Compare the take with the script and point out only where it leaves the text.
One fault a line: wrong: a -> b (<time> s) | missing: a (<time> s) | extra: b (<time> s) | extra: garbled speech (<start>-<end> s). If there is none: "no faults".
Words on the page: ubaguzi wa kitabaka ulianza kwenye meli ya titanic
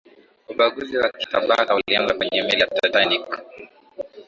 no faults